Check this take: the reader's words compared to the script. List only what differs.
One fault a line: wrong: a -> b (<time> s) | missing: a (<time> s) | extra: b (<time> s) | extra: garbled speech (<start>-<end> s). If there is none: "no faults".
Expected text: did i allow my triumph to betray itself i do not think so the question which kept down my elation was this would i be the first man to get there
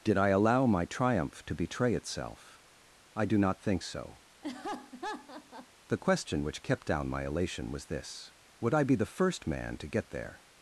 no faults